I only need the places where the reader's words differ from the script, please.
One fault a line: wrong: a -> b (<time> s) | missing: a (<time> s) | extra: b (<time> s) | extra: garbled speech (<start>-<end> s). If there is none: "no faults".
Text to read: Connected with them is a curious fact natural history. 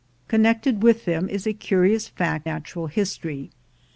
no faults